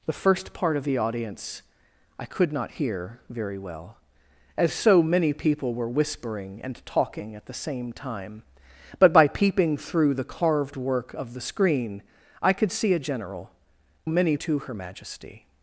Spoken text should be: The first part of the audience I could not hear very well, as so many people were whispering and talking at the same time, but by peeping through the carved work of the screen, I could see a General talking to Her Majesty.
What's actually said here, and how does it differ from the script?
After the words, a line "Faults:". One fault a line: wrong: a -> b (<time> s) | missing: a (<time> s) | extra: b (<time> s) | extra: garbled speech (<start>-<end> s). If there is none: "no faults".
The first part of the audience I could not hear very well, as so many people were whispering and talking at the same time, but by peeping through the carved work of the screen, I could see a General many to Her Majesty.
Faults:
wrong: talking -> many (14.1 s)